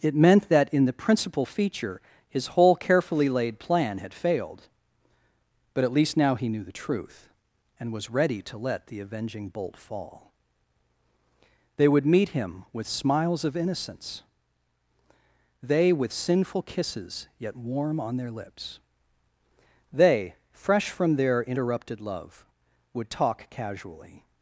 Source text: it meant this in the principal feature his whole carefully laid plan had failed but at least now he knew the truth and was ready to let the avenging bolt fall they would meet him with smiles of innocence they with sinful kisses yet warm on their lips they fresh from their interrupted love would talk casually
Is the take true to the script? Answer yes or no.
no